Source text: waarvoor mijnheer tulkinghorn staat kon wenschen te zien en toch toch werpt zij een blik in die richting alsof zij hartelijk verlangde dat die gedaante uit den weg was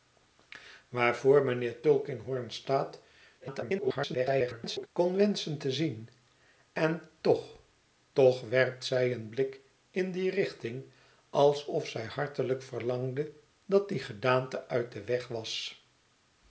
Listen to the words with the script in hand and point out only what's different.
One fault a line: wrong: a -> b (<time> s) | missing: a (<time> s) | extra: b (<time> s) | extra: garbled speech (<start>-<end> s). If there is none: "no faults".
extra: garbled speech (3.4-4.9 s)